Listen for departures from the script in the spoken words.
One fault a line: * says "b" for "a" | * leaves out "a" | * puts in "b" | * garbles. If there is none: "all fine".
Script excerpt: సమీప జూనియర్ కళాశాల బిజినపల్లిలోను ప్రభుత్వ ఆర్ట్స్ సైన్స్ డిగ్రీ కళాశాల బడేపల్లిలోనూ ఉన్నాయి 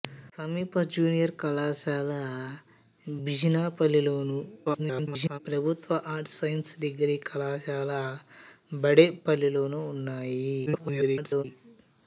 * garbles
* garbles